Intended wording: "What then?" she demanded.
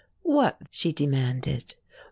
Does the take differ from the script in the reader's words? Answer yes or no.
yes